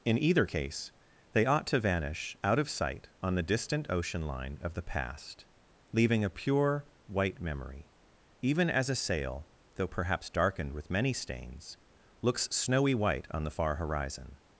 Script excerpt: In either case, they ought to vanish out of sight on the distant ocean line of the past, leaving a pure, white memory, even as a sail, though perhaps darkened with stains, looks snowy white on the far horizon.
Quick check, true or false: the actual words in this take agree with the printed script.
false